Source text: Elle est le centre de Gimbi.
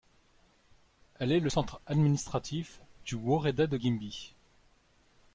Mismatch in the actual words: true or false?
true